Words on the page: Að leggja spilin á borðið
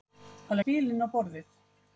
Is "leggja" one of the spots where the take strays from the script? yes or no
yes